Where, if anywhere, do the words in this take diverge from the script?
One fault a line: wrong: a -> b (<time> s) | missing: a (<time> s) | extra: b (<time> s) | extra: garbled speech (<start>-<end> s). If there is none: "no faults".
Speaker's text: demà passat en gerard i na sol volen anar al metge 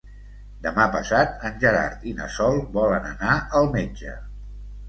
no faults